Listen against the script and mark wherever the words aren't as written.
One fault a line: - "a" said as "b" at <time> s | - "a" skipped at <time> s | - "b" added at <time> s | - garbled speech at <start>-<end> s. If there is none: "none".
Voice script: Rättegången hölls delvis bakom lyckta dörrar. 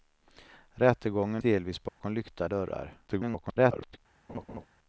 - "hölls" skipped at 1.4 s
- garbled speech at 3.1-4.0 s